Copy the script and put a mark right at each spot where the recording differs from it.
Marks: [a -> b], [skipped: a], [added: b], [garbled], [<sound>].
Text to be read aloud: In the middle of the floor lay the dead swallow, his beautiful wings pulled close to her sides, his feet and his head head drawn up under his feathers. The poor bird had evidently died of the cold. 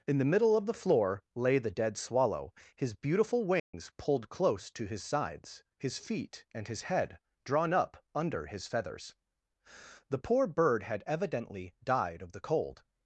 In the middle of the floor lay the dead swallow, his beautiful wings [dropout] pulled close to [her -> his] sides, his feet and his head [skipped: head] drawn up under his feathers. The poor bird had evidently died of the cold.